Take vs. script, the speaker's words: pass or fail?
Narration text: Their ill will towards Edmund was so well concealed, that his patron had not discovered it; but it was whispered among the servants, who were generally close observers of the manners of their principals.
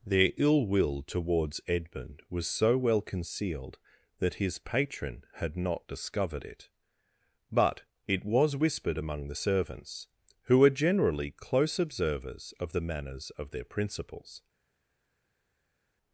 pass